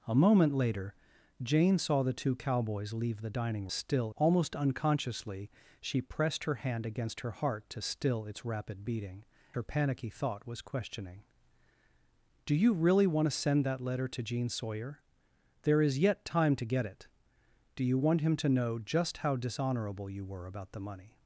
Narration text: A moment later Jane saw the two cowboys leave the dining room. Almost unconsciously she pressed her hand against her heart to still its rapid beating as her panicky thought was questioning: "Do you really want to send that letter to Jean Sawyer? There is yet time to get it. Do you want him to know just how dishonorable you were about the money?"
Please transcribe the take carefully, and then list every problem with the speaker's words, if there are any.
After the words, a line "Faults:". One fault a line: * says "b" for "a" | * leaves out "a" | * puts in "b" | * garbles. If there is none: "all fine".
A moment later Jane saw the two cowboys leave the dining still. Almost unconsciously she pressed her hand against her heart to still its rapid beating her panicky thought was questioning: "Do you really want to send that letter to Jean Sawyer? There is yet time to get it. Do you want him to know just how dishonorable you were about the money?"
Faults:
* says "still" for "room"
* leaves out "as"